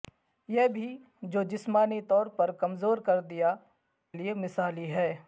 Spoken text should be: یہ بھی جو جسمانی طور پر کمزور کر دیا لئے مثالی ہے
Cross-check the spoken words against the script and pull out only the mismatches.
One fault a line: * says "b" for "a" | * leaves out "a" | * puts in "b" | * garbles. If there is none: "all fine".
all fine